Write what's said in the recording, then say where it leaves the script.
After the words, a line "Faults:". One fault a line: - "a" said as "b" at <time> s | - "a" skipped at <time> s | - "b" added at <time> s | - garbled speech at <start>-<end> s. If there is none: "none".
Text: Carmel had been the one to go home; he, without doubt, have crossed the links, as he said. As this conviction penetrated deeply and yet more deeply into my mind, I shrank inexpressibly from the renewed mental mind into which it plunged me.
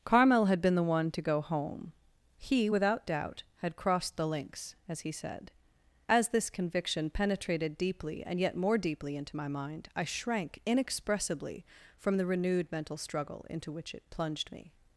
Carmel had been the one to go home; he, without doubt, had crossed the links, as he said. As this conviction penetrated deeply and yet more deeply into my mind, I shrank inexpressibly from the renewed mental struggle into which it plunged me.
Faults:
- "have" said as "had" at 3.6 s
- "mind" said as "struggle" at 13.0 s